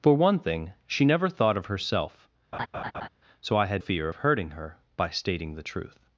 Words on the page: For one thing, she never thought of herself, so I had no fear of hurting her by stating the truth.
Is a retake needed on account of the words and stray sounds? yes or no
yes